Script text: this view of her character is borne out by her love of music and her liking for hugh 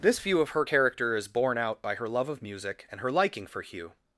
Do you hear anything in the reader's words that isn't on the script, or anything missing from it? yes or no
no